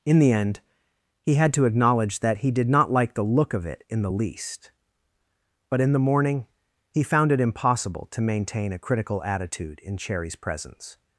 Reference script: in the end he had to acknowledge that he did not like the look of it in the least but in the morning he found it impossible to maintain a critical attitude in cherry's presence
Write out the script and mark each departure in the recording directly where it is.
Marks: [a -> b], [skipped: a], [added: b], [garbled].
in the end he had to acknowledge that he did not like the look of it in the least but in the morning he found it impossible to maintain a critical attitude in cherry's presence